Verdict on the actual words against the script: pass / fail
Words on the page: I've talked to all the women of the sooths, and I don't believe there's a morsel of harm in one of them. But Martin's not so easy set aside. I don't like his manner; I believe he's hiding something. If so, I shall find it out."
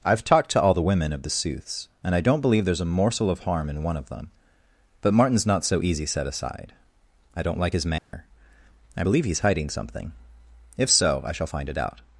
pass